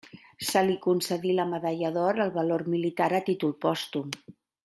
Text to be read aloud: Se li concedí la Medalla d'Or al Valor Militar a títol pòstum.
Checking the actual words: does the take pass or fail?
pass